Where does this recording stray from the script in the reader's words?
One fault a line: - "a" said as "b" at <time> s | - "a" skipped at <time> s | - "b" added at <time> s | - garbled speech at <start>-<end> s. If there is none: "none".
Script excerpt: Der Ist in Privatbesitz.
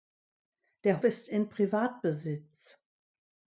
none